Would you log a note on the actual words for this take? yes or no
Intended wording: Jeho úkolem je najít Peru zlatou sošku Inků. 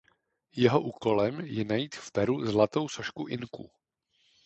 yes